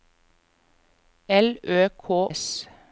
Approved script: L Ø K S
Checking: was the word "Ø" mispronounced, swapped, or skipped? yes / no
no